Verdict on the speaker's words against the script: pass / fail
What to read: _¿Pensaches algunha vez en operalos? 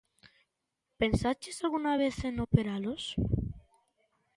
pass